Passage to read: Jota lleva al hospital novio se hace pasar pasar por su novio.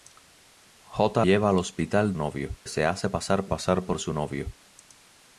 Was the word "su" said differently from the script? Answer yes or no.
no